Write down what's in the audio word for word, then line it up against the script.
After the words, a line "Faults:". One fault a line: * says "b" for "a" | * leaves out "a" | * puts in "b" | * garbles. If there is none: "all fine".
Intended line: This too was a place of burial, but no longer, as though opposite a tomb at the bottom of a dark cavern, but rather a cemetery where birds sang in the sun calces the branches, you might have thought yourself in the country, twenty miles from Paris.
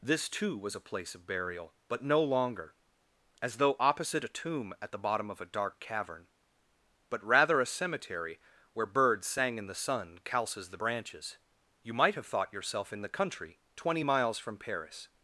This too was a place of burial, but no longer, as though opposite a tomb at the bottom of a dark cavern, but rather a cemetery where birds sang in the sun calces the branches, you might have thought yourself in the country, twenty miles from Paris.
Faults:
all fine